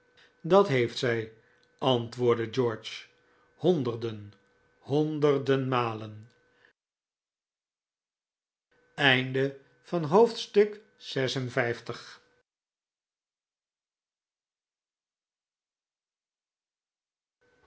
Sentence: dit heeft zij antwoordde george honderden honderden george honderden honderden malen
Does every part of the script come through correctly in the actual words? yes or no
no